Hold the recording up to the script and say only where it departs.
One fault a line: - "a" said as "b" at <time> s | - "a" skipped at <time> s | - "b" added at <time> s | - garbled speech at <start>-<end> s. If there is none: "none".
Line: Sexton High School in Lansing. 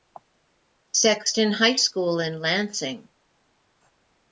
none